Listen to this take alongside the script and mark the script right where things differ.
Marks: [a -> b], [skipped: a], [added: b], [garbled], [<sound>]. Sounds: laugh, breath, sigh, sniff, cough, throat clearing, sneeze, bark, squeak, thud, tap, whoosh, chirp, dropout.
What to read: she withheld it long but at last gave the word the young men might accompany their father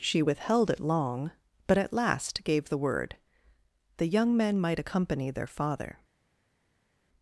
she withheld it long but at last gave the word the young men might accompany their father